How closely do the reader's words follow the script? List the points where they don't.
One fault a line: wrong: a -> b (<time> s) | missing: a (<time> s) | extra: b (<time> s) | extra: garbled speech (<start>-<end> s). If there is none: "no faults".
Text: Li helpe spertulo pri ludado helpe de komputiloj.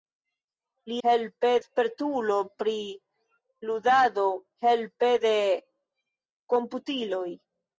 no faults